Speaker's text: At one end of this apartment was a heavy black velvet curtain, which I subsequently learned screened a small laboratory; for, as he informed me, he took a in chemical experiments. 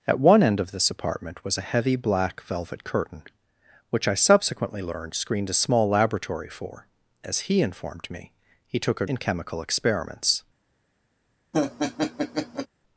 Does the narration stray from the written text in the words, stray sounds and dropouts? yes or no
yes